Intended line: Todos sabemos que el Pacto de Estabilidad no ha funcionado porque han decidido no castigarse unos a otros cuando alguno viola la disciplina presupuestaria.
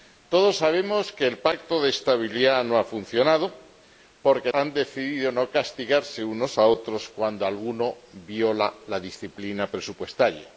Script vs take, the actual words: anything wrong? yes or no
no